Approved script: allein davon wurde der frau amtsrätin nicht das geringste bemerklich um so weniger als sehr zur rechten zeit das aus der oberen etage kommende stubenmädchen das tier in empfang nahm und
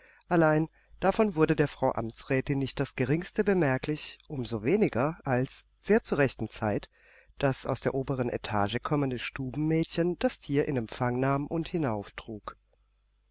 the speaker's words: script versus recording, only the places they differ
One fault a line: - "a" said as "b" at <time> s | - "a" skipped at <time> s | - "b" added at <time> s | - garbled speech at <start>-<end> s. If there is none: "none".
none